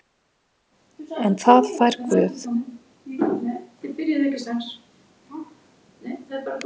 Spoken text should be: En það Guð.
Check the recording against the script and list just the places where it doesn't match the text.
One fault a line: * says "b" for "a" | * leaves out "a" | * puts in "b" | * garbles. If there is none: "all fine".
* puts in "fær"